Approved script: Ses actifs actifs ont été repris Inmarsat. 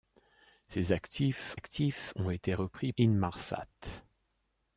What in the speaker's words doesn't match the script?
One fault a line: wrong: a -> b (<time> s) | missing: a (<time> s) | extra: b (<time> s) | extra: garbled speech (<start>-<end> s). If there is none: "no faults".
no faults